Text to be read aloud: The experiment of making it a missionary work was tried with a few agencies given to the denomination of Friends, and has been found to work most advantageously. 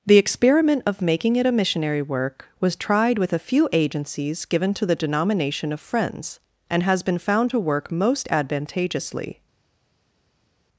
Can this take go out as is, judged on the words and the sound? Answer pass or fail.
pass